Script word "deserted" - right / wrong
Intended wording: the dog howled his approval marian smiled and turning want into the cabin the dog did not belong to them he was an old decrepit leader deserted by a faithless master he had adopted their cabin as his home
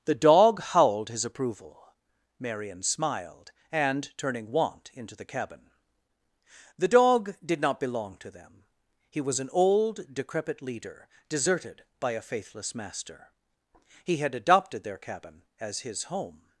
right